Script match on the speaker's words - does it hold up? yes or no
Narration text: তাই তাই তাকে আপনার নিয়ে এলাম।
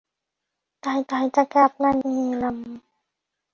yes